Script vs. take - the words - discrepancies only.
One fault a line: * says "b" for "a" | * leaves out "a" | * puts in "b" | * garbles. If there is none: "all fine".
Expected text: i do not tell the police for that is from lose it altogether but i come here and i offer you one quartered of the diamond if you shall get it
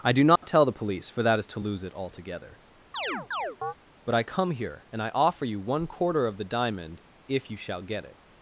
* says "to" for "from"
* says "quarter" for "quartered"